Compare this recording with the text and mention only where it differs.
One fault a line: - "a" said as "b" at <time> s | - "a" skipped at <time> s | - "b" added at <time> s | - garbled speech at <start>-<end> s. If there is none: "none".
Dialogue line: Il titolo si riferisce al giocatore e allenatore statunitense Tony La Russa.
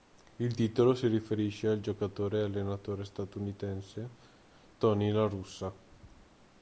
none